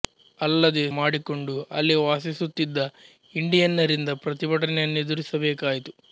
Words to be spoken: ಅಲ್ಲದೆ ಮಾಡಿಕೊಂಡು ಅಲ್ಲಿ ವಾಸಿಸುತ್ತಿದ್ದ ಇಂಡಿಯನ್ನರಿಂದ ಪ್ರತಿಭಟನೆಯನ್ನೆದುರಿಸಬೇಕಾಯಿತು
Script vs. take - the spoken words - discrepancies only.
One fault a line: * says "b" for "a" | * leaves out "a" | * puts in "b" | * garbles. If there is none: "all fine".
all fine